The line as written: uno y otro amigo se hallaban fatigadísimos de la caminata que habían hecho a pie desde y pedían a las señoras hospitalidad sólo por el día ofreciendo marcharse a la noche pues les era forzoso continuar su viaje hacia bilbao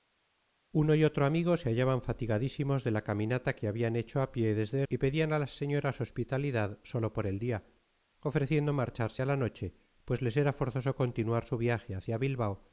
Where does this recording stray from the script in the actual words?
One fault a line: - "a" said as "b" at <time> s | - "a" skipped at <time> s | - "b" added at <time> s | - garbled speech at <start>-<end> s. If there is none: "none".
none